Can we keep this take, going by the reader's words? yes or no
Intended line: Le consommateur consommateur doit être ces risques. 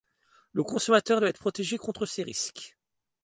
no